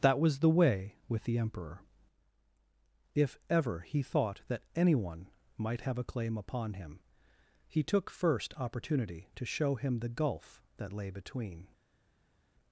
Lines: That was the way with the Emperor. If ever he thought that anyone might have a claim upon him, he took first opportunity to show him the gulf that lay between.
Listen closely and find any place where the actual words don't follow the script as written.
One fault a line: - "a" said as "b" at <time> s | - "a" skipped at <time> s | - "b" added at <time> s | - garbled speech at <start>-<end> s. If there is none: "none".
none